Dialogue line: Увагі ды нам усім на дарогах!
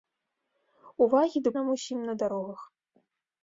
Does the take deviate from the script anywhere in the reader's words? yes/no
no